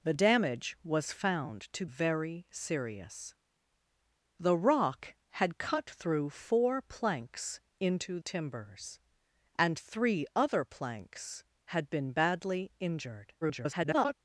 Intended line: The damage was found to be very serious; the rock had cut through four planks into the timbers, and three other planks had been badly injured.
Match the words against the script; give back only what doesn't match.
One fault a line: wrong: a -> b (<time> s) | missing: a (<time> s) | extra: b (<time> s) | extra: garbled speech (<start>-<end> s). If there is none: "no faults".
missing: be (1.8 s)
missing: the (8.2 s)
extra: garbled speech (13.4-14.1 s)